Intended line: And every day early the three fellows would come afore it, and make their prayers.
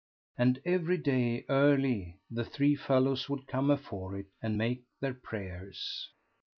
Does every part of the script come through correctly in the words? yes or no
yes